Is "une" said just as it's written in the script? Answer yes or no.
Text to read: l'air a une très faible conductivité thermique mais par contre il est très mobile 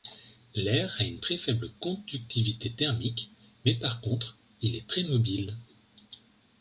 yes